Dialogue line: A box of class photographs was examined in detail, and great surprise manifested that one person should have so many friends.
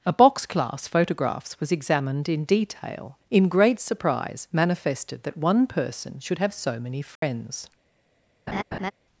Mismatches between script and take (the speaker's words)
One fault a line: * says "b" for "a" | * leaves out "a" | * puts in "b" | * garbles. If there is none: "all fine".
* leaves out "of"
* says "in" for "and"